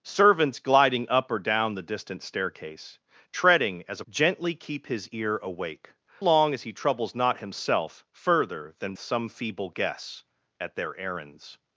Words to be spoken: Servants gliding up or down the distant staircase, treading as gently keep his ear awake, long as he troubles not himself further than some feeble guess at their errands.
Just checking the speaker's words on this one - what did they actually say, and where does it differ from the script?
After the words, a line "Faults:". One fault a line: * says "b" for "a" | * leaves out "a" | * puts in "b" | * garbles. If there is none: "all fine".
Servants gliding up or down the distant staircase, treading as gently keep his ear awake, long as he troubles not himself further than some feeble guess at their errands.
Faults:
all fine